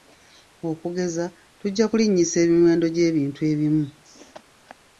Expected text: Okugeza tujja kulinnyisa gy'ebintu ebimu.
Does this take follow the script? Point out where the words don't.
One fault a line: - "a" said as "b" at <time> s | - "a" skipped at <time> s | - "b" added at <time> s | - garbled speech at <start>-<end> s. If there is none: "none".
- "emiwendo" added at 2.4 s